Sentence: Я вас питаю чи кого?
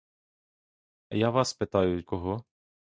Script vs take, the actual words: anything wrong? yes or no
yes